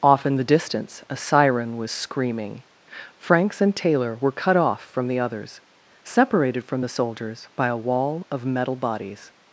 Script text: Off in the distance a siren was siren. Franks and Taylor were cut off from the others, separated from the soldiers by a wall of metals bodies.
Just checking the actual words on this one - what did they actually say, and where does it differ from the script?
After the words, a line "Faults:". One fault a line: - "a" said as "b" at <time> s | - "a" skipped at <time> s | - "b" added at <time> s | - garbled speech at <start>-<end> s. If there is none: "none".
Off in the distance a siren was screaming. Franks and Taylor were cut off from the others, separated from the soldiers by a wall of metal bodies.
Faults:
- "siren" said as "screaming" at 1.9 s
- "metals" said as "metal" at 8.4 s